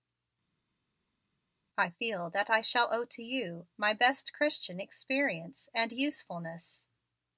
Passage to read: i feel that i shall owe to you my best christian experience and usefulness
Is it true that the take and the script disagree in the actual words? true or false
false